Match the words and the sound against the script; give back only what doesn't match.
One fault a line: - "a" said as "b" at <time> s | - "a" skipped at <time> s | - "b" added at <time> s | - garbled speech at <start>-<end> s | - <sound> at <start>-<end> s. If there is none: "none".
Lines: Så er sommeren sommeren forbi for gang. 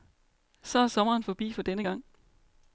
- "sommeren" skipped at 1.2 s
- "denne" added at 1.6 s